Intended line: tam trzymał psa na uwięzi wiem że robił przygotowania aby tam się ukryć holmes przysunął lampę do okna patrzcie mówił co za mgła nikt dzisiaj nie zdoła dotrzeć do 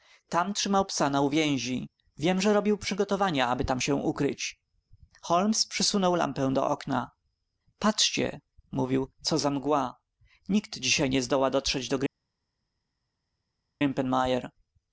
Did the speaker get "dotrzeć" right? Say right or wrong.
right